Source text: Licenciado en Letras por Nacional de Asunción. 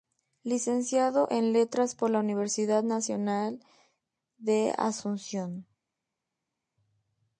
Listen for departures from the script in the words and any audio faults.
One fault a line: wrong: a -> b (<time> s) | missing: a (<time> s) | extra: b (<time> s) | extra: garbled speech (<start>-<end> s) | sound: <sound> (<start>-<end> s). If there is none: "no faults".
extra: la Universidad (2.1 s)